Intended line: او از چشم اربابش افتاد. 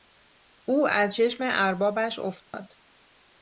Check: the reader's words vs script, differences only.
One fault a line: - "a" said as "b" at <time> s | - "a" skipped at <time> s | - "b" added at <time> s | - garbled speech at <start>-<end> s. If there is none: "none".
none